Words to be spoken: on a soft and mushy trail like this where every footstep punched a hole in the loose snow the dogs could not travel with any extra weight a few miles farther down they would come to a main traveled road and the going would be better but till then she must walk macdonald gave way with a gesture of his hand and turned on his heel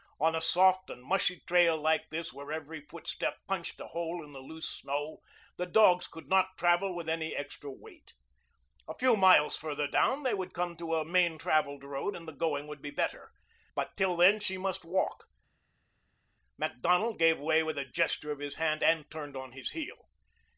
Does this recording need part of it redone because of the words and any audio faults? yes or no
no